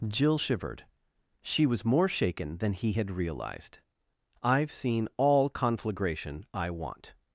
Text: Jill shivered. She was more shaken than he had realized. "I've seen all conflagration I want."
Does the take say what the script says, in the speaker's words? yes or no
yes